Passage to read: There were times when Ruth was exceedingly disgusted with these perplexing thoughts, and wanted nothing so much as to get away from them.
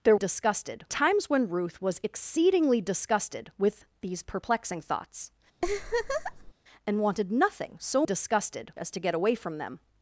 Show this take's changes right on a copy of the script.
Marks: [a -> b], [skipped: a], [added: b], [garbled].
There [were -> disgusted] times when Ruth was exceedingly disgusted with these perplexing thoughts, and wanted nothing so [much -> disgusted] as to get away from them.